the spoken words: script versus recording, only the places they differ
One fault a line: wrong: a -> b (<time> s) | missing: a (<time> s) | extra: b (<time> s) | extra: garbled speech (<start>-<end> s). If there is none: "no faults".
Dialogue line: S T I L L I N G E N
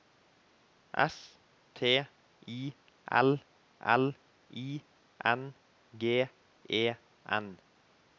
no faults